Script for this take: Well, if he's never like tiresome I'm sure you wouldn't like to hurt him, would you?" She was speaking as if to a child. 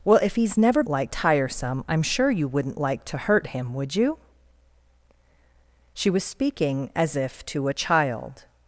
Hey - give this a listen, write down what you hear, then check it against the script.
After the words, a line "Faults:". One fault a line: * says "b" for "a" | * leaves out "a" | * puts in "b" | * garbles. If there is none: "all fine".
Well, if he's never like tiresome I'm sure you wouldn't like to hurt him, would you?" She was speaking as if to a child.
Faults:
all fine